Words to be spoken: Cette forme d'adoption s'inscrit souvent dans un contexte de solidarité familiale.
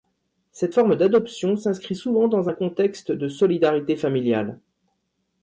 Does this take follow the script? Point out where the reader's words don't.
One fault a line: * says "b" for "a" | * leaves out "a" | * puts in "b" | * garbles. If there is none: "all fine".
all fine